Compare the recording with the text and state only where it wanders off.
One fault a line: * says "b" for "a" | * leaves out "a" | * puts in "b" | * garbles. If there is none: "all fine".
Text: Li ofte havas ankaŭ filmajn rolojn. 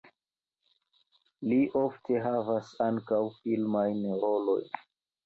all fine